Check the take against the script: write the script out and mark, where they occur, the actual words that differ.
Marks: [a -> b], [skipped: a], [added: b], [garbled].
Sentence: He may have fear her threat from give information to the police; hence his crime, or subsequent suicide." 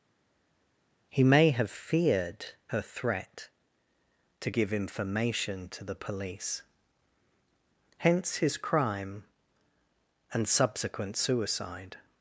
He may have [fear -> feared] her threat [from -> to] give information to the police; hence his crime, [or -> and] subsequent suicide."